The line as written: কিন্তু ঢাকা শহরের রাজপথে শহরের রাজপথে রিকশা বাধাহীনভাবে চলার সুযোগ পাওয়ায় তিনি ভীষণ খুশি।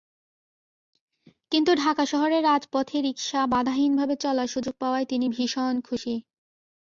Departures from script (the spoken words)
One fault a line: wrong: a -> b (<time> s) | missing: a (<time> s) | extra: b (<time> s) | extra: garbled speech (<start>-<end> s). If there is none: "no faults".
missing: শহরের রাজপথে (3.0 s)